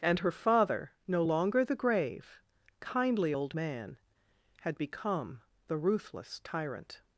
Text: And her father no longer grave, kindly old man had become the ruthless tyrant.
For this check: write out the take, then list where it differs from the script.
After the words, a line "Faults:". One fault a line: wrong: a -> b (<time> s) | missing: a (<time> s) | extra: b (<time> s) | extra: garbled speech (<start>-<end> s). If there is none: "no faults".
And her father no longer the grave, kindly old man had become the ruthless tyrant.
Faults:
extra: the (1.6 s)